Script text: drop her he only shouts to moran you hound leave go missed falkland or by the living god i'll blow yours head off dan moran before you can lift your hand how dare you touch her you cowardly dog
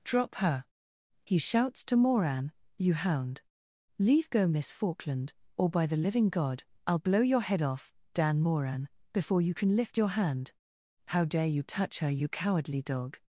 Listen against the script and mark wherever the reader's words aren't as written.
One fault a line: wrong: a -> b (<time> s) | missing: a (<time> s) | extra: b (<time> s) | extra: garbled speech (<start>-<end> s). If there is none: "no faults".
missing: only (1.4 s)
wrong: missed -> miss (4.5 s)
wrong: yours -> your (7.2 s)